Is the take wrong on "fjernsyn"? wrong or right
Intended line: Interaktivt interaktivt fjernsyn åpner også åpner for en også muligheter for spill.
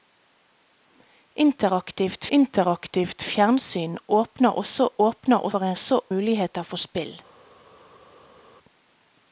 right